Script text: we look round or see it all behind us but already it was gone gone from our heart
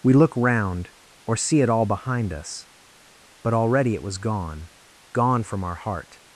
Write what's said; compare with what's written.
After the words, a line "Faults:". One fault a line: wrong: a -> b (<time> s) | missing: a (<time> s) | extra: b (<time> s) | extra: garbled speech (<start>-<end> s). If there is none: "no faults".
we look round or see it all behind us but already it was gone gone from our heart
Faults:
no faults